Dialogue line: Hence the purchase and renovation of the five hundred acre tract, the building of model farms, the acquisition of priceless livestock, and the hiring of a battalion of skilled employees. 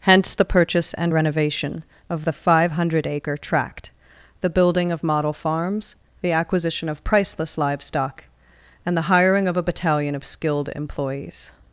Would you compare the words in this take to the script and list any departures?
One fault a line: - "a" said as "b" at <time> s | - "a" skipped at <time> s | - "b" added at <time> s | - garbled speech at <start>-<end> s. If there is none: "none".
none